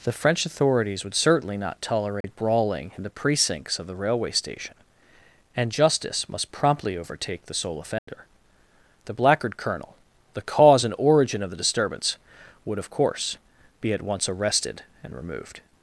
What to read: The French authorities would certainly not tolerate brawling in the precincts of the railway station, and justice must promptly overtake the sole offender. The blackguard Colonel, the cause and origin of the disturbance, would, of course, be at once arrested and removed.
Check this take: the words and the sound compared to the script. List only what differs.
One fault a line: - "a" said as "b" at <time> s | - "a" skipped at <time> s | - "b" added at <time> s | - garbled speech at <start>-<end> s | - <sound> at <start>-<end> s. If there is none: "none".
- dropout at 2.2-2.2 s
- dropout at 8.0-8.1 s